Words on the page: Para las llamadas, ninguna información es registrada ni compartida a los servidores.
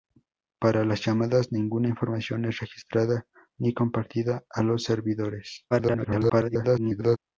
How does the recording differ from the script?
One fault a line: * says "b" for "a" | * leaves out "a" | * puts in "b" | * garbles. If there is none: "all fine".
* garbles